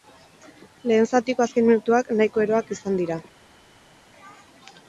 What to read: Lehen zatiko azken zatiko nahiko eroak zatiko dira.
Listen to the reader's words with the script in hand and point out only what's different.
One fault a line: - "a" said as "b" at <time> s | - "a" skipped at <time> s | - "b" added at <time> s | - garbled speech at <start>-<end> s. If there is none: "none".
- "zatiko" said as "minutuak" at 1.7 s
- "zatiko" said as "izan" at 2.8 s